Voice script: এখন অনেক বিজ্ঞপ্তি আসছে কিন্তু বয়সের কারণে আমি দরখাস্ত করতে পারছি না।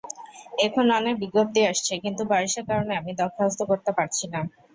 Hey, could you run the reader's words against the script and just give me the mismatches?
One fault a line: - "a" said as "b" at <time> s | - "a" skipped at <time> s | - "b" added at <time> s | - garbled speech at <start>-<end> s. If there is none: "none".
none